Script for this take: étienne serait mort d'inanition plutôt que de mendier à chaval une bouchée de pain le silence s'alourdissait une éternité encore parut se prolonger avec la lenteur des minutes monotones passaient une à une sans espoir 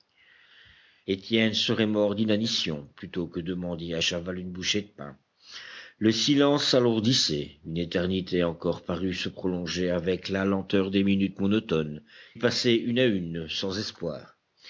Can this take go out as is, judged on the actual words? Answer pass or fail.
pass